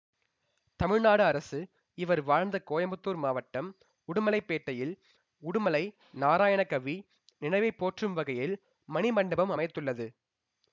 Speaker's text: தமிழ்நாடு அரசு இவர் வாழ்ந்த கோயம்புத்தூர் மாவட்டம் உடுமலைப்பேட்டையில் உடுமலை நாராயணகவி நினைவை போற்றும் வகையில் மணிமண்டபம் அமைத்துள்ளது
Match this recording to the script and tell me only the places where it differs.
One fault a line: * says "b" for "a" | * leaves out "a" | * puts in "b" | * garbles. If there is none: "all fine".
all fine